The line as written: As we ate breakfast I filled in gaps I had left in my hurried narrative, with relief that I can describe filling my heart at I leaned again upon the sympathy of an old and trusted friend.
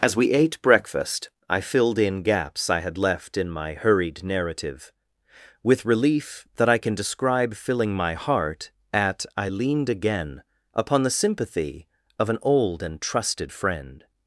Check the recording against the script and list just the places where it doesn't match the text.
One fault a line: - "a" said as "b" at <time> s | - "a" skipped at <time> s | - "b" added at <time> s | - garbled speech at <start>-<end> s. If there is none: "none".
none